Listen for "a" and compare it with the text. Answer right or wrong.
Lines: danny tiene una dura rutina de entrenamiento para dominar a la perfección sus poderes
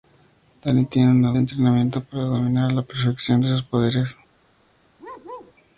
right